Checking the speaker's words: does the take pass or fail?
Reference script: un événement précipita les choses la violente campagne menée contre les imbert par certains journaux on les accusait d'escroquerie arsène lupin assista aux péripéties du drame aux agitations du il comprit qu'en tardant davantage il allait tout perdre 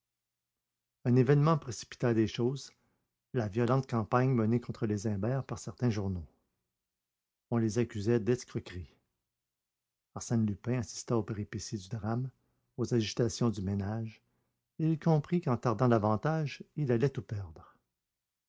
fail